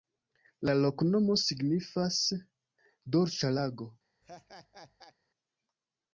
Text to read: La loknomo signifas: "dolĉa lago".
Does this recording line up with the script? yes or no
yes